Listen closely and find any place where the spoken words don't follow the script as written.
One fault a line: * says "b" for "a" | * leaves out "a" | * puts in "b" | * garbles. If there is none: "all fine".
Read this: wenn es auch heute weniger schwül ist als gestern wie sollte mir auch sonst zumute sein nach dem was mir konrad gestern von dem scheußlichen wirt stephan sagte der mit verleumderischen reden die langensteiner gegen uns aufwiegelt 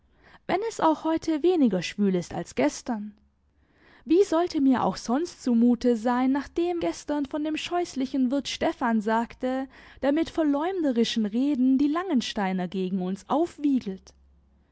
* leaves out "was mir konrad"